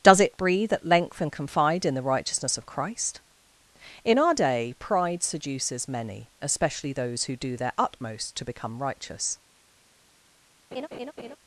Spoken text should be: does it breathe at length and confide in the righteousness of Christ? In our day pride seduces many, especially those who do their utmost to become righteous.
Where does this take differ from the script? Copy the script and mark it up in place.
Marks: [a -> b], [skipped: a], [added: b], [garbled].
does it breathe at length and confide in the righteousness of Christ? In our day pride seduces many, especially those who do their utmost to become righteous.